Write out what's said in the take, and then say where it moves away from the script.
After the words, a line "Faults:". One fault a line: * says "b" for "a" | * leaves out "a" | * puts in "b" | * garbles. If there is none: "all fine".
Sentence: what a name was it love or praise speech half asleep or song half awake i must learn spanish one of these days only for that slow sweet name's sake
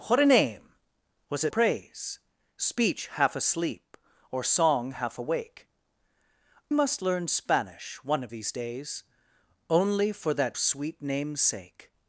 what a name was it praise speech half asleep or song half awake must learn spanish one of these days only for that sweet name's sake
Faults:
* leaves out "love or"
* leaves out "i"
* leaves out "slow"